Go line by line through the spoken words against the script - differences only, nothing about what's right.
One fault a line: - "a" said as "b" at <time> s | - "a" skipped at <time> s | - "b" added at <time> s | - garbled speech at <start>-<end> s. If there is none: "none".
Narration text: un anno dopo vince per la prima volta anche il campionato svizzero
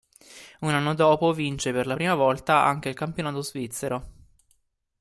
none